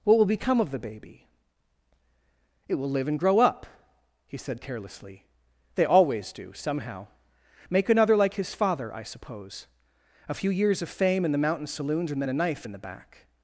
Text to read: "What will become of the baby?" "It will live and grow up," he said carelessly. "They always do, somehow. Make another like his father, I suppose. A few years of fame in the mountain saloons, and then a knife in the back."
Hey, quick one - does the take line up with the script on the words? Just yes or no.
yes